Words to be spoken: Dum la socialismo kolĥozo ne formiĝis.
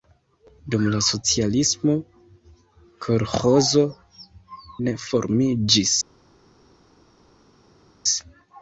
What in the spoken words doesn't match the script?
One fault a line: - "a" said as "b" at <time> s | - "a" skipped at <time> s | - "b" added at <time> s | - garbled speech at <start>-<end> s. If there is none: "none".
none